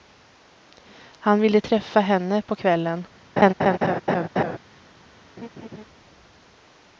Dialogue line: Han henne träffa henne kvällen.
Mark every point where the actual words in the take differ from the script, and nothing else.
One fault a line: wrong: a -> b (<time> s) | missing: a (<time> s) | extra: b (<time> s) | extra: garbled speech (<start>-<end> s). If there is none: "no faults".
wrong: henne -> ville (1.4 s)
extra: på (2.4 s)